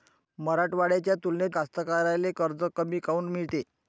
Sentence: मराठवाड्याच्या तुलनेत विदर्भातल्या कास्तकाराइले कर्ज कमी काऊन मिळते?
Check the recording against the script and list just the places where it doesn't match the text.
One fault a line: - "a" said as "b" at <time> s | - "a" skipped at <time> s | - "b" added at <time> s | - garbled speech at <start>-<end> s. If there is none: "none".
- "विदर्भातल्या" skipped at 1.6 s